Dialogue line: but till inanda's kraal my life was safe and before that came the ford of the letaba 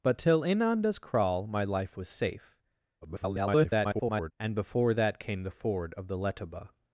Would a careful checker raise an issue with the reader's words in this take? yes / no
yes